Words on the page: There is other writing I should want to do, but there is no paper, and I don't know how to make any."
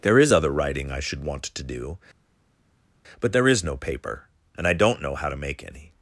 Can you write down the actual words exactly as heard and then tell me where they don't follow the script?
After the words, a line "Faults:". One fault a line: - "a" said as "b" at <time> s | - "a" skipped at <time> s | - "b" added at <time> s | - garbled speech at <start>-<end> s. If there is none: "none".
There is other writing I should want to do, but there is no paper, and I don't know how to make any."
Faults:
none